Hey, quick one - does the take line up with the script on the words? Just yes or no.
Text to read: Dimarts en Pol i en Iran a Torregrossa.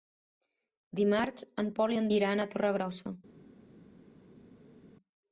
yes